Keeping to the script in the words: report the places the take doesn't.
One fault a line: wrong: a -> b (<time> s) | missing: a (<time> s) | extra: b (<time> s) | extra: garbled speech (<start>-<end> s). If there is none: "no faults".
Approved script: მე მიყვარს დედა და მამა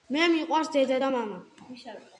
no faults